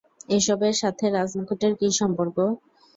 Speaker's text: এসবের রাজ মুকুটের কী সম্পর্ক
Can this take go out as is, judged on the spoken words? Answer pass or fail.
fail